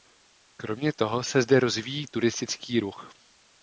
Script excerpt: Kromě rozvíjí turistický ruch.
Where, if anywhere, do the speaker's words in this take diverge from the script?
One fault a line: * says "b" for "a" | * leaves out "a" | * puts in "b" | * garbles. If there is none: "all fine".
* puts in "toho se zde"